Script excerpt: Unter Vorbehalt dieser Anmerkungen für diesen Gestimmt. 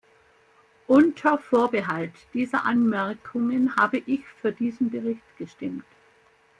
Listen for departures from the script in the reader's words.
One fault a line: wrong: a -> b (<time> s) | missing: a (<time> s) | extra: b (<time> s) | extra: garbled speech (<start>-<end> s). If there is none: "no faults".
extra: habe ich (3.8 s)
extra: Bericht (4.9 s)